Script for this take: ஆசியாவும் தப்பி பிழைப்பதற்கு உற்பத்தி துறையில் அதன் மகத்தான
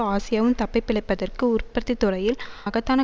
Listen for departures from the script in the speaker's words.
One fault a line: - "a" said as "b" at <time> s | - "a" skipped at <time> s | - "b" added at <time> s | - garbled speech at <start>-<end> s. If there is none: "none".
- "அதன்" skipped at 2.4 s